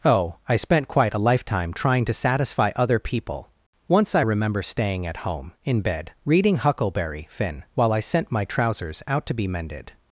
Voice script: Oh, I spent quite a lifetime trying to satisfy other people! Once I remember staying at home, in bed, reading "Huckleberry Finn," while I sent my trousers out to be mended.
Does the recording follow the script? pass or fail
pass